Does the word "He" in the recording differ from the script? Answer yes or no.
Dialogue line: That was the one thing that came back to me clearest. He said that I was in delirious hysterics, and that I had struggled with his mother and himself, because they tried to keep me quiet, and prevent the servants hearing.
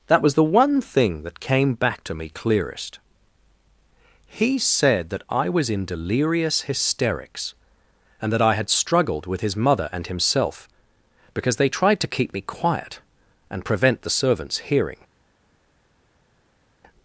no